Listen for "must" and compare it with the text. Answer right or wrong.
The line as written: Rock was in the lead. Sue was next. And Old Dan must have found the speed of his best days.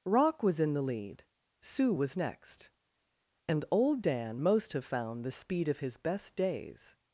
wrong